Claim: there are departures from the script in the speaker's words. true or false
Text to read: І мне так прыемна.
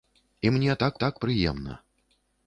true